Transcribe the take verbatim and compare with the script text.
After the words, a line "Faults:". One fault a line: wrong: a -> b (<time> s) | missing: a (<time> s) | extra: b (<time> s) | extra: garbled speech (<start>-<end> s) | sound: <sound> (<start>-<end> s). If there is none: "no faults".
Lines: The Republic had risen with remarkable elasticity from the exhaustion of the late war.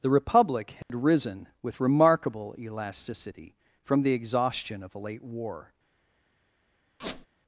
The Republic had risen with remarkable elasticity from the exhaustion of a late war.
Faults:
sound: dropout (0.8-0.9 s)
wrong: the -> a (5.0 s)
sound: squeak (7.0-7.3 s)